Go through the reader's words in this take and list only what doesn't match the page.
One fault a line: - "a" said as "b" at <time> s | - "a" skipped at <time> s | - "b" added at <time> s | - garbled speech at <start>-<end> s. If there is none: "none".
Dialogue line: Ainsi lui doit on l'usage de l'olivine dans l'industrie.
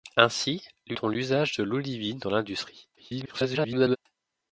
- "doit" skipped at 0.9 s
- garbled speech at 3.0-4.0 s